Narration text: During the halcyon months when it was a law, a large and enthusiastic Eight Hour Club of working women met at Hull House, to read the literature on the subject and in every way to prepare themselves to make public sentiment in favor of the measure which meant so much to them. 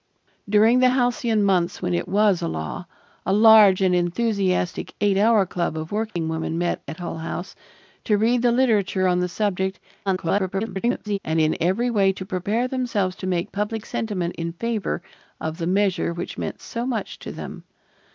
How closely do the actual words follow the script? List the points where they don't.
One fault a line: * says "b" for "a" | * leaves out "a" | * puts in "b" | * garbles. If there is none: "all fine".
* garbles